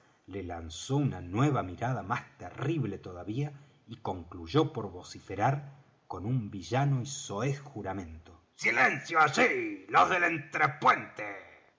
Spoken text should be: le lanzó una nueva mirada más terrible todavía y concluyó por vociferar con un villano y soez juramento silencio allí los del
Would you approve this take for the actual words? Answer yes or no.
yes